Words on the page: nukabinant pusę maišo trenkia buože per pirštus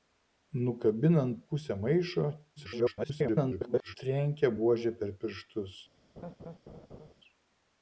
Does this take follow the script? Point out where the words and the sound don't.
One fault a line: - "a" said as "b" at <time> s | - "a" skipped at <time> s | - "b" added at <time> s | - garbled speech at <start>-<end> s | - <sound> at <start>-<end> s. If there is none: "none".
- garbled speech at 2.6-4.0 s
- laugh at 6.2-7.1 s